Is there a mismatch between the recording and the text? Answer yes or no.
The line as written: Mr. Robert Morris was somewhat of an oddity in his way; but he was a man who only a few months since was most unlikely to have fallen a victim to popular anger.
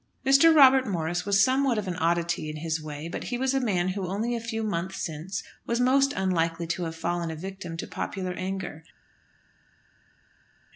no